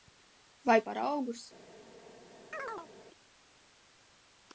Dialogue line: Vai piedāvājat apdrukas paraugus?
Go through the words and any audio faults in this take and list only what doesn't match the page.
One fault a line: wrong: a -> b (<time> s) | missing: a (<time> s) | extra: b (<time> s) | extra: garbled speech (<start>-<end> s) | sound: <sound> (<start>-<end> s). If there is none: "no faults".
missing: piedāvājat apdrukas (0.8 s)
sound: chirp (2.5-2.9 s)